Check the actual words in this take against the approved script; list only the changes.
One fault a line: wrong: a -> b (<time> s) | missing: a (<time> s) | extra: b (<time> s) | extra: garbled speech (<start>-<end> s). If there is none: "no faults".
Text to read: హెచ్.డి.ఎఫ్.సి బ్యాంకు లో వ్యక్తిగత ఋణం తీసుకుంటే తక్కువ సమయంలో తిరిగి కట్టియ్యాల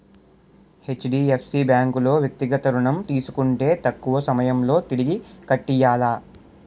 no faults